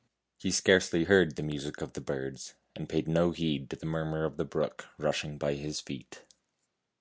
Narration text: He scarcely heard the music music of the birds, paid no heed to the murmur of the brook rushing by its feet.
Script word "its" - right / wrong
wrong